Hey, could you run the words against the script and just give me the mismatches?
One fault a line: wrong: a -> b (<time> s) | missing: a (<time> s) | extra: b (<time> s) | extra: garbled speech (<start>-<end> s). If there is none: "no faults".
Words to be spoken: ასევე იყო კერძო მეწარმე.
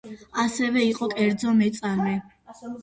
no faults